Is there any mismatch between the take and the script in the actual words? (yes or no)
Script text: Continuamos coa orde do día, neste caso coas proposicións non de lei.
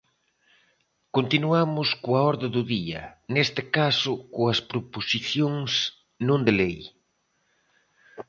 no